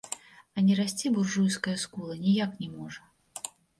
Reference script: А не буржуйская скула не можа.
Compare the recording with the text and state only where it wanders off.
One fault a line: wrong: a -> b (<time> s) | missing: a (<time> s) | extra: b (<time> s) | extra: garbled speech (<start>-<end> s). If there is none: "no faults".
extra: расці (0.8 s)
extra: ніяк (2.2 s)